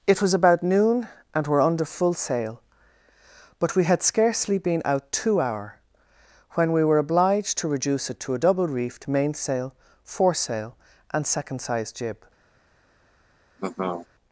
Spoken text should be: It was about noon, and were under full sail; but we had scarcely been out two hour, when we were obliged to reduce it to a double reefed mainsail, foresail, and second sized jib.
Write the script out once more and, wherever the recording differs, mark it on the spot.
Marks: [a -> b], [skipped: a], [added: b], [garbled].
It was about noon, and were under full sail; but we had scarcely been out two hour, when we were obliged to reduce it to a double reefed mainsail, foresail, and second sized jib.